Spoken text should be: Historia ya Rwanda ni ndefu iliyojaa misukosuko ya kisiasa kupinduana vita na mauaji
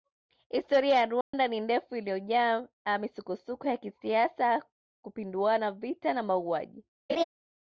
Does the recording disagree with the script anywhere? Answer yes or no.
no